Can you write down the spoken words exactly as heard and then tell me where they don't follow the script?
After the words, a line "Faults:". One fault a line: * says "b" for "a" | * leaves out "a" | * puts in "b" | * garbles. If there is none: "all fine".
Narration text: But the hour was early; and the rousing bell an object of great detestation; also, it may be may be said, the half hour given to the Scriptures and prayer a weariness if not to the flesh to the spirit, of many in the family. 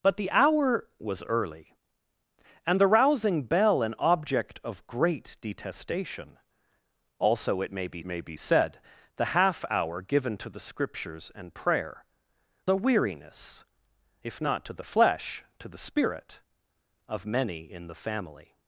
But the hour was early; and the rousing bell an object of great detestation; also, it may be may be said, the half hour given to the Scriptures and prayer a weariness if not to the flesh to the spirit, of many in the family.
Faults:
all fine